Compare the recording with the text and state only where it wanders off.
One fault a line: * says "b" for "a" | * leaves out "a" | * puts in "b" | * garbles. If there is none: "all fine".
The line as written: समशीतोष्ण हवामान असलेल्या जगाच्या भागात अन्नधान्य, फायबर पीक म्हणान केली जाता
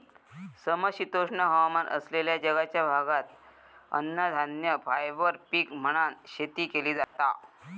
* puts in "शेती"